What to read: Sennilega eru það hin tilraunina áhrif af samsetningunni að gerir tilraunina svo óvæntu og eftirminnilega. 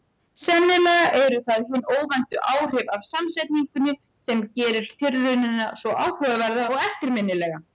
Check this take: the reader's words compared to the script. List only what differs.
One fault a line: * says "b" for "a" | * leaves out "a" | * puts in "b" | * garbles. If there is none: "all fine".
* says "óvæntu" for "tilraunina"
* says "sem" for "að"
* says "áhugaverða" for "óvæntu"